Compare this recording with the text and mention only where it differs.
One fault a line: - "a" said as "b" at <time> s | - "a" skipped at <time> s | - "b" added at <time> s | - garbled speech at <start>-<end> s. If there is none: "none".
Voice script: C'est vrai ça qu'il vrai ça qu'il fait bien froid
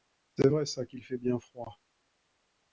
- "vrai ça qu'il" skipped at 1.0 s